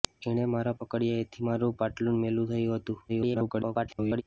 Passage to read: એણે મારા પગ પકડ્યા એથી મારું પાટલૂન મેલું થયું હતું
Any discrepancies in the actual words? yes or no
yes